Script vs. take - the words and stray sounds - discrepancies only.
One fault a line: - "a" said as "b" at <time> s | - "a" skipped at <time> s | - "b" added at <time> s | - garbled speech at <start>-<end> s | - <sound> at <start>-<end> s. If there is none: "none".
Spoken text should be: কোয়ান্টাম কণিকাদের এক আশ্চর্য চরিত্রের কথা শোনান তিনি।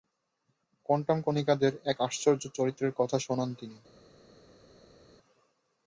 none